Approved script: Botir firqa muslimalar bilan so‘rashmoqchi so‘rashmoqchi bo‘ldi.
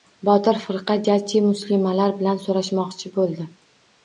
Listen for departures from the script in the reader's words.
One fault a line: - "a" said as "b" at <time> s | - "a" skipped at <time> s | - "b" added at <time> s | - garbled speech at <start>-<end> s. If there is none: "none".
- "jajji" added at 1.1 s
- "so‘rashmoqchi" skipped at 3.1 s